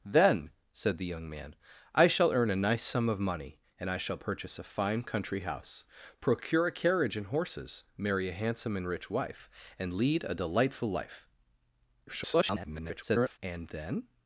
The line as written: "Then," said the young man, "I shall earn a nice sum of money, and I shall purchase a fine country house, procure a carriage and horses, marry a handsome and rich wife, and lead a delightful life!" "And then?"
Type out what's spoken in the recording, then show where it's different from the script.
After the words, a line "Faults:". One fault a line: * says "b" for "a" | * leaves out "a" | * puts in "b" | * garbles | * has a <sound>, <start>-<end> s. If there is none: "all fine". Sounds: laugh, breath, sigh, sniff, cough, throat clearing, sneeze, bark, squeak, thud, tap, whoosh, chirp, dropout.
"Then," said the young man, "I shall earn a nice sum of money, and I shall purchase a fine country house, procure a carriage and horses, marry a handsome and rich wife, and lead a delightful life!" [garbled] "And then?"
Faults:
* garbles